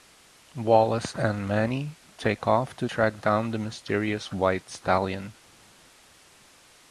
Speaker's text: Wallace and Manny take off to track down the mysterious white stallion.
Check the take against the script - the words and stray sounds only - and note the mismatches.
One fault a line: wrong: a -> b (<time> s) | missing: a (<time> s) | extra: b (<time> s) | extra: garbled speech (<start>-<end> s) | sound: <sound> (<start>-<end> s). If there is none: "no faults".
no faults